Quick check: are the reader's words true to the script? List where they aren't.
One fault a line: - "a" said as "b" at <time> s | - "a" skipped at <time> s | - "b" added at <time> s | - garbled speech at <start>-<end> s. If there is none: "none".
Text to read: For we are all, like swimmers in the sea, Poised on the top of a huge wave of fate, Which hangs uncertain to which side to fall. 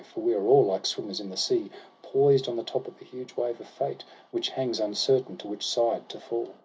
none